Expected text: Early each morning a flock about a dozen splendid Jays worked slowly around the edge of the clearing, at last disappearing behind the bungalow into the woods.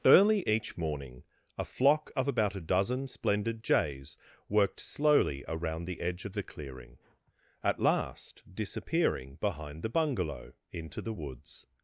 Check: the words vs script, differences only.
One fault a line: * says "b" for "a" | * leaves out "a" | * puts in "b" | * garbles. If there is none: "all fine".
* puts in "of"